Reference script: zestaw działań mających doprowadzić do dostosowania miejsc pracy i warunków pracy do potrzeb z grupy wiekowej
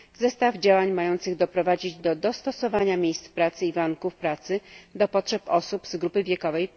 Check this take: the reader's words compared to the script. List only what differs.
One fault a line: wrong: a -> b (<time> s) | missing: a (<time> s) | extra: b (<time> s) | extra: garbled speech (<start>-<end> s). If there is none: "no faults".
extra: osób (5.5 s)